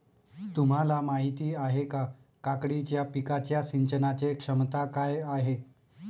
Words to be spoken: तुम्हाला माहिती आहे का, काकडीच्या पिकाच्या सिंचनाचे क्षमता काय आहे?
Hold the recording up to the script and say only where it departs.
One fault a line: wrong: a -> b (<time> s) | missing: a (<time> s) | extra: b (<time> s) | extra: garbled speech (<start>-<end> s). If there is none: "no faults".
no faults